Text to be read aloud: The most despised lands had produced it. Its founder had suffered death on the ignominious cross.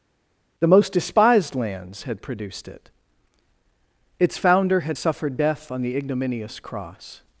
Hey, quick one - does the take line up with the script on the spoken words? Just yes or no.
yes